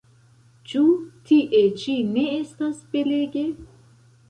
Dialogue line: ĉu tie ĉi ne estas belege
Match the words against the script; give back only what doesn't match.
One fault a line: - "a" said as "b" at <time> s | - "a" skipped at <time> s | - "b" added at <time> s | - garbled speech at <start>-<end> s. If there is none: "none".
none